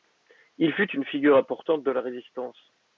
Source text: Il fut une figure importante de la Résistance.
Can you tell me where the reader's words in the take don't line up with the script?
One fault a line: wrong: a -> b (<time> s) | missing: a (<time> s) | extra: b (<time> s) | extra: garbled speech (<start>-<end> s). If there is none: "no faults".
no faults